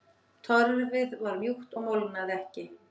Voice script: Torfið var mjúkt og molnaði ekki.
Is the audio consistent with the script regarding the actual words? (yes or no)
yes